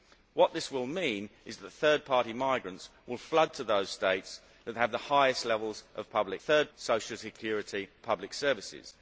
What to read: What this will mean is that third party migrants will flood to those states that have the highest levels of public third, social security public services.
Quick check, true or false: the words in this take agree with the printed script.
true